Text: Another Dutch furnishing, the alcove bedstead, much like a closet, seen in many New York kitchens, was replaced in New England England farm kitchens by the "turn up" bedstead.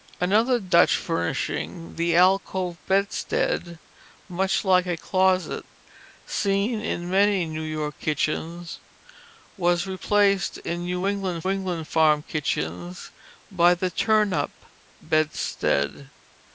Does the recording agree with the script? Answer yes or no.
yes